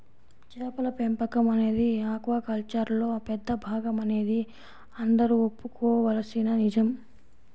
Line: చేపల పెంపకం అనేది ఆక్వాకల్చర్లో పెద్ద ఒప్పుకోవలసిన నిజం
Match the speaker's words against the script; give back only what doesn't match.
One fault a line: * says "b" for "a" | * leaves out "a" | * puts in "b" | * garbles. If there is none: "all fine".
* puts in "భాగమనేది అందరూ"